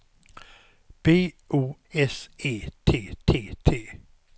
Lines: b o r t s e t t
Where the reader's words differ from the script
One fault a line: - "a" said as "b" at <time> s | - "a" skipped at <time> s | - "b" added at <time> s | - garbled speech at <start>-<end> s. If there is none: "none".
- "r t" skipped at 1.8 s
- "t" added at 3.6 s